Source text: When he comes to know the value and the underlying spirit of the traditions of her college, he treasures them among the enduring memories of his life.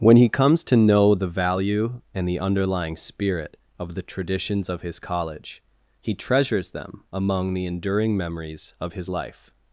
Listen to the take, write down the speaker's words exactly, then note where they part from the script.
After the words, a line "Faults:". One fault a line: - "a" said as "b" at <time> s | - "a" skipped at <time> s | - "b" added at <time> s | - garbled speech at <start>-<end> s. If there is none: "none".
When he comes to know the value and the underlying spirit of the traditions of his college, he treasures them among the enduring memories of his life.
Faults:
- "her" said as "his" at 4.8 s